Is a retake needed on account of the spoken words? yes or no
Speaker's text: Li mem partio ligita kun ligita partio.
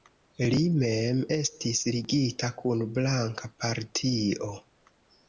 yes